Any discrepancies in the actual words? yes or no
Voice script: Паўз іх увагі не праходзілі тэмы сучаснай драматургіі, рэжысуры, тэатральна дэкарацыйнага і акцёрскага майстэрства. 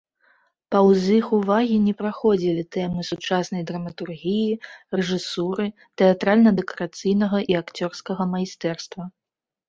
no